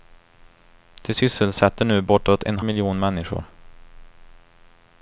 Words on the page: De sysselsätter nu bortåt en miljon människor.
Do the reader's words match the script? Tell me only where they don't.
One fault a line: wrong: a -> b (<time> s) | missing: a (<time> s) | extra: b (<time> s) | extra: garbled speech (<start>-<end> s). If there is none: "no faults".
no faults